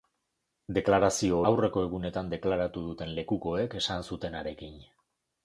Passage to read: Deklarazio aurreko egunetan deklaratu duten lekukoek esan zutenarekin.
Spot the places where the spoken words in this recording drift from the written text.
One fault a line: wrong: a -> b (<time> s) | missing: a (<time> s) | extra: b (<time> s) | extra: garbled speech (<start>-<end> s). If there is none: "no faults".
no faults